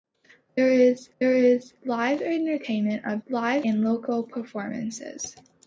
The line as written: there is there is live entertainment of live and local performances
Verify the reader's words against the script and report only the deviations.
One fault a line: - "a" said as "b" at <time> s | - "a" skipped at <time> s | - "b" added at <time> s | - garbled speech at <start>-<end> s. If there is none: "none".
none